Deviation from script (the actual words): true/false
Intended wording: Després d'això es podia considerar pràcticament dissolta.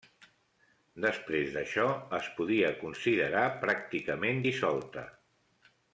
false